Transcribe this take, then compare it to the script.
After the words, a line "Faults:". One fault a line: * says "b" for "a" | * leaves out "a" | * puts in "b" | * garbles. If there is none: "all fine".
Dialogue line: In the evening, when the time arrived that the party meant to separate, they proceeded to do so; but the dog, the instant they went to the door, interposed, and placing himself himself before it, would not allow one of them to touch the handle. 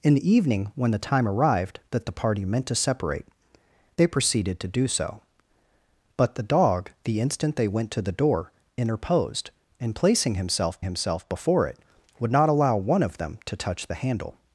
In the evening, when the time arrived that the party meant to separate, they proceeded to do so; but the dog, the instant they went to the door, interposed, and placing himself himself before it, would not allow one of them to touch the handle.
Faults:
all fine